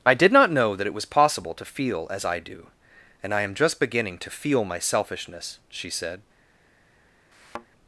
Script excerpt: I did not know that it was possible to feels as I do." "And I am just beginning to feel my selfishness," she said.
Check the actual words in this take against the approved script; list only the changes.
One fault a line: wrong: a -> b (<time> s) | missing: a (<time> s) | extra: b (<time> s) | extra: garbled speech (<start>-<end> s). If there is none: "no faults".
wrong: feels -> feel (1.6 s)